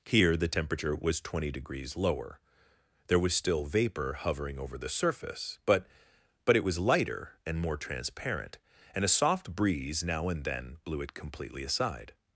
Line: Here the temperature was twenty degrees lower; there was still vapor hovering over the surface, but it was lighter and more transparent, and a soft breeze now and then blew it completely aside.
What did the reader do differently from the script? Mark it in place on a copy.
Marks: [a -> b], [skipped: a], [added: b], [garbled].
Here the temperature was twenty degrees lower; there was still vapor hovering over the surface, but [added: but] it was lighter and more transparent, and a soft breeze now and then blew it completely aside.